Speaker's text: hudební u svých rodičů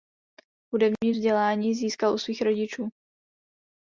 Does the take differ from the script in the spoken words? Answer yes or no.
yes